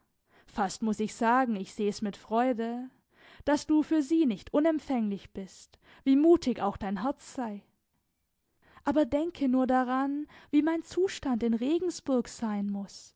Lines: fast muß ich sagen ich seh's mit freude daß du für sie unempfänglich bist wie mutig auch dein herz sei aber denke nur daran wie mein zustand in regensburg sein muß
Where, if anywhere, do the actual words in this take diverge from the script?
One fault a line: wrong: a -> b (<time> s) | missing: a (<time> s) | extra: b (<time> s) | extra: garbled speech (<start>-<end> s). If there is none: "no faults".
extra: nicht (4.2 s)